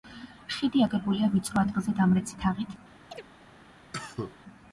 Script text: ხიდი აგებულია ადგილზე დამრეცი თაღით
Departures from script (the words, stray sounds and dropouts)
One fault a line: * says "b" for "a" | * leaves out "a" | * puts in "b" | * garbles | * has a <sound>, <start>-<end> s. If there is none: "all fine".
* puts in "ვიწრო"
* has a chirp, 3.1-3.3 s
* has a cough, 3.9-4.4 s